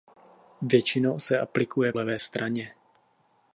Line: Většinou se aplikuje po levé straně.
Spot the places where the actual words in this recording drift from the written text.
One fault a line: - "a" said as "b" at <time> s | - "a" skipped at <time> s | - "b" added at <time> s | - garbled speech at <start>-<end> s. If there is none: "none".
- "po" skipped at 1.9 s